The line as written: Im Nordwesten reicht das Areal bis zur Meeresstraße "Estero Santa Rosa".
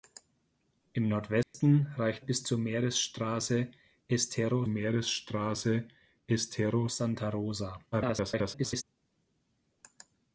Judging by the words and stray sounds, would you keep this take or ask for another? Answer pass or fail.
fail